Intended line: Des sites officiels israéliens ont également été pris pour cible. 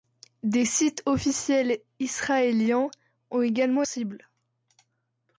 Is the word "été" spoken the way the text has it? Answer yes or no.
no